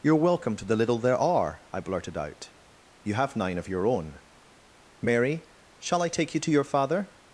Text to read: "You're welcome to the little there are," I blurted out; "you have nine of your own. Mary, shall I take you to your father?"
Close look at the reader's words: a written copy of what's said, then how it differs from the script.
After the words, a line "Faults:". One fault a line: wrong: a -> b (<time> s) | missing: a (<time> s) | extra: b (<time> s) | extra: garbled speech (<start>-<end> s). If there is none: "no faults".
"You're welcome to the little there are," I blurted out; "you have nine of your own. Mary, shall I take you to your father?"
Faults:
no faults